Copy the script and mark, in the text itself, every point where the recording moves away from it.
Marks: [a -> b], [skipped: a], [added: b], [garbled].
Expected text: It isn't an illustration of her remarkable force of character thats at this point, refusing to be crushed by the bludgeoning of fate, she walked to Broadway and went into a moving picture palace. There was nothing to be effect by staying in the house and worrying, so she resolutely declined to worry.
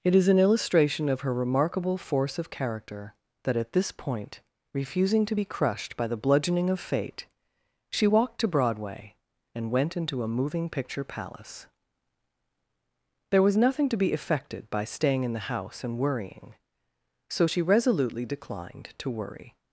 It [isn't -> is] an illustration of her remarkable force of character [thats -> that] at this point, refusing to be crushed by the bludgeoning of fate, she walked to Broadway and went into a moving picture palace. There was nothing to be [effect -> effected] by staying in the house and worrying, so she resolutely declined to worry.